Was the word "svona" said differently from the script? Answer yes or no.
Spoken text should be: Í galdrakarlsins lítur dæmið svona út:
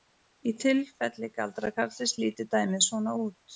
no